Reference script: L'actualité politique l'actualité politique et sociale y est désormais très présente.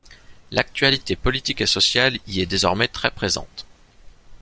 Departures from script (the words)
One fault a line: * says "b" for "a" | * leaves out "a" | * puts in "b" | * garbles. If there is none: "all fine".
* leaves out "l'actualité politique"